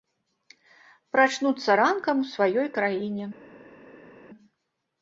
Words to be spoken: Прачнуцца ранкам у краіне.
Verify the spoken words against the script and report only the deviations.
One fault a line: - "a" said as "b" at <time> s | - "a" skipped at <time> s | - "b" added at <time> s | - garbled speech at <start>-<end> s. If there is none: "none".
- "сваёй" added at 2.3 s